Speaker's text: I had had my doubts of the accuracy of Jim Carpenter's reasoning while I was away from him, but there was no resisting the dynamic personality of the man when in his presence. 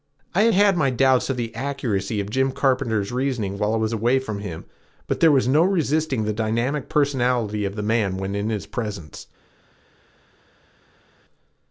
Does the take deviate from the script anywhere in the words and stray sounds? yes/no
no